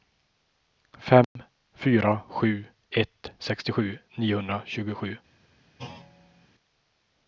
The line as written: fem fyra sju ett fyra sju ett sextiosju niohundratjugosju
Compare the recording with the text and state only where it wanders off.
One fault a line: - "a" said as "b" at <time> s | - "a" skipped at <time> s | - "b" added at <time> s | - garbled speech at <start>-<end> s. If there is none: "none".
- "fyra sju ett" skipped at 3.3 s